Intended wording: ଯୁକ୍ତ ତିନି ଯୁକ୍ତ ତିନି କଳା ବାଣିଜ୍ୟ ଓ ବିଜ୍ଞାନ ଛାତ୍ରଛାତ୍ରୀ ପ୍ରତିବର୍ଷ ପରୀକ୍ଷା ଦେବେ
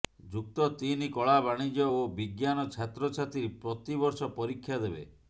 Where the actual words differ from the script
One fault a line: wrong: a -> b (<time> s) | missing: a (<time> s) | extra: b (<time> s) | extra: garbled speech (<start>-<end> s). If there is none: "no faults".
missing: ଯୁକ୍ତ ତିନି (1.1 s)